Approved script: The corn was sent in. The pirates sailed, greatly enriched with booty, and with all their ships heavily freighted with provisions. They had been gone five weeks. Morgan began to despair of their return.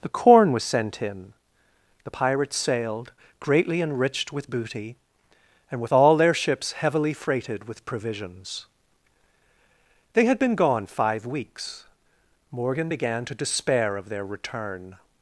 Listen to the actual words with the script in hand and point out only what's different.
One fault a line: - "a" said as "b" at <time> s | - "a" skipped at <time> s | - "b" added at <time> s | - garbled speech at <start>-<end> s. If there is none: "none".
none